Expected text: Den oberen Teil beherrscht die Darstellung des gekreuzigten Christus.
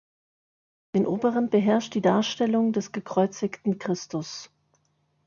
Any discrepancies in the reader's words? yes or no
yes